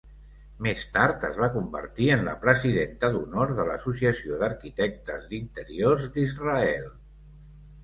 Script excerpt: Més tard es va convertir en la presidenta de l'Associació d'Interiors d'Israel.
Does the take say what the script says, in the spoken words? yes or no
no